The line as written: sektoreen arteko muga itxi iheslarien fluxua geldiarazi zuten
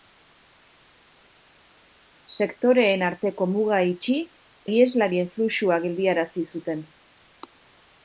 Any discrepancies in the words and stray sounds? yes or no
no